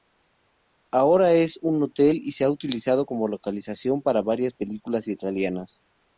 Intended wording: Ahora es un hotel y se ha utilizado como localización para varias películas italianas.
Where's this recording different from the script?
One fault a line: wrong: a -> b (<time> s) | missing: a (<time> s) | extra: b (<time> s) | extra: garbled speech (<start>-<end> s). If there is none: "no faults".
no faults